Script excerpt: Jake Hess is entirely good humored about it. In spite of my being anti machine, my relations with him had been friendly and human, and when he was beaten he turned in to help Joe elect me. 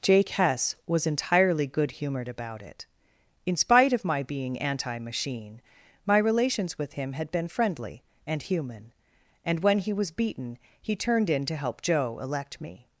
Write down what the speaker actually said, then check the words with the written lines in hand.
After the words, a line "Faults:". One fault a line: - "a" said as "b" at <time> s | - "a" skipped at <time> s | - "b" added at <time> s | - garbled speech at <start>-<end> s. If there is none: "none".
Jake Hess was entirely good humored about it. In spite of my being anti machine, my relations with him had been friendly and human, and when he was beaten he turned in to help Joe elect me.
Faults:
- "is" said as "was" at 0.9 s